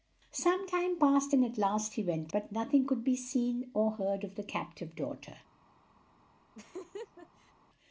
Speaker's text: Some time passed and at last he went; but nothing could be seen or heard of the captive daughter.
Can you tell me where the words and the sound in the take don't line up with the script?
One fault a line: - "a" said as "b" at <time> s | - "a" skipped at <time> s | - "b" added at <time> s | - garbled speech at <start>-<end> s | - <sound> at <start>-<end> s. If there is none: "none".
- laugh at 6.5-7.5 s